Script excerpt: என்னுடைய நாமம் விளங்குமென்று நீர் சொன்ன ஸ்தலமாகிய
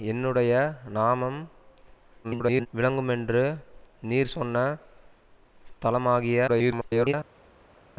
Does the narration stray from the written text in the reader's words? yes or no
yes